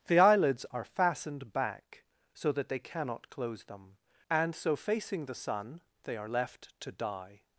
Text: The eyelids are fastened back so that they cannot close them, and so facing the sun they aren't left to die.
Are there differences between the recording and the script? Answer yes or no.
yes